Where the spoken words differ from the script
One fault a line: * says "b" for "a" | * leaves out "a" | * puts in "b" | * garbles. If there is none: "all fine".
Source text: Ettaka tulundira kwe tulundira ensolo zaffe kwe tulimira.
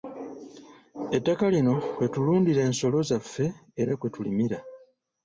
* says "lino" for "tulundira"
* puts in "era"